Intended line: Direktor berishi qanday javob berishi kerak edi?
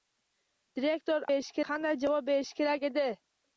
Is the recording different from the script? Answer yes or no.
no